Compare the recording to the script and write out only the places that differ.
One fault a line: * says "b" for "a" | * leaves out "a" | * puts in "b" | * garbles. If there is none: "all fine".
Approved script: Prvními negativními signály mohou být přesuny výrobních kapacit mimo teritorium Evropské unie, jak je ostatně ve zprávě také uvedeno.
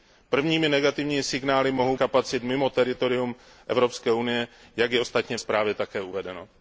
* leaves out "být přesuny výrobních"
* leaves out "ve"